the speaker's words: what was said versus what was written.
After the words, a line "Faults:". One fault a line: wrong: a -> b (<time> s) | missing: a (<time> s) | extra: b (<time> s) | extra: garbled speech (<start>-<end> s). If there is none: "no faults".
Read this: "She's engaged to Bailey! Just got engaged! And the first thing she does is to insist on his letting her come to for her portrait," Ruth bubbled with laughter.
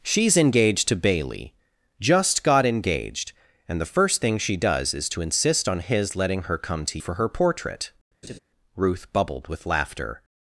"She's engaged to Bailey! Just got engaged! And the first thing she does is to insist on his letting her come to for her portrait," Ruth bubbled with laughter.
Faults:
no faults